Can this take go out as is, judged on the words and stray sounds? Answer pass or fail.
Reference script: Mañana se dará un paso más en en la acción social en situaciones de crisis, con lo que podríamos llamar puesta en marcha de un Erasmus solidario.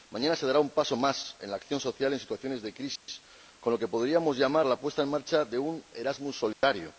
fail